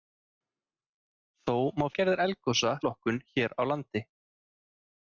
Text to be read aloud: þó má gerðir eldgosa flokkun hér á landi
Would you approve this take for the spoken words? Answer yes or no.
yes